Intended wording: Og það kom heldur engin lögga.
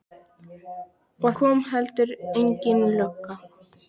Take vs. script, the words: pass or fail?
fail